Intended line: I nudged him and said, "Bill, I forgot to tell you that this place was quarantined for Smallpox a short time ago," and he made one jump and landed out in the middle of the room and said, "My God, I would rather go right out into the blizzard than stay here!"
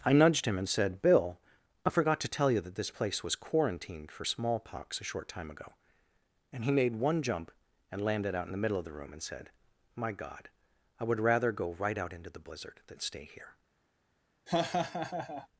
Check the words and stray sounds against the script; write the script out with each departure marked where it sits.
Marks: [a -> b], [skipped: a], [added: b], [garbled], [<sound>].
I nudged him and said, "Bill, I forgot to tell you that this place was quarantined for Smallpox a short time ago," and he made one jump and landed out in the middle of the room and said, "My God, I would rather go right out into the blizzard than stay here!" [laugh]